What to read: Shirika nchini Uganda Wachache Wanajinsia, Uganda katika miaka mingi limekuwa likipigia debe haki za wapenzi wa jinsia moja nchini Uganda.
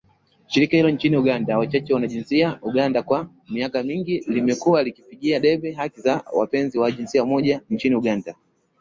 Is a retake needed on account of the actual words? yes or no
yes